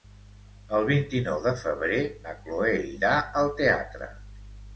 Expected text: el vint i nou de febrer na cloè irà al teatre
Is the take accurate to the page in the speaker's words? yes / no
yes